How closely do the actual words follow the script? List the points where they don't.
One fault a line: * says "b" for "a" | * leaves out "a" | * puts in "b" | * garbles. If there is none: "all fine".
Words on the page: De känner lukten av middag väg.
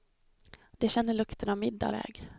all fine